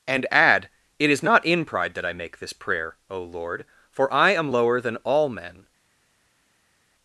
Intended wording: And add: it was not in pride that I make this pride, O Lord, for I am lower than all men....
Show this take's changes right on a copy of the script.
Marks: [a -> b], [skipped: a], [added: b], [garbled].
And add: it [was -> is] not in pride that I make this [pride, -> prayer] O Lord, for I am lower than all men....